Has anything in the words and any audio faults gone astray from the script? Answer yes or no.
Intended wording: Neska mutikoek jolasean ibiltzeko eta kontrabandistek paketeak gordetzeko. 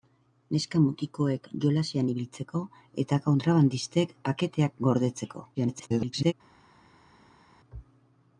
yes